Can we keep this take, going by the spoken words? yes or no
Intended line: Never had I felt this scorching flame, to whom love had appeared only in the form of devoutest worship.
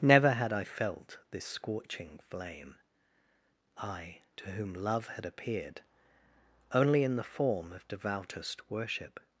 no